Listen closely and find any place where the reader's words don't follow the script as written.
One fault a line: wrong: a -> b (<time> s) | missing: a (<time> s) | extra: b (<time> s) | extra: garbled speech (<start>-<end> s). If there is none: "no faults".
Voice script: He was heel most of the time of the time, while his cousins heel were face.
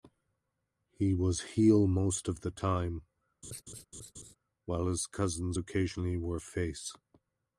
missing: of the time (3.0 s)
wrong: heel -> occasionally (5.6 s)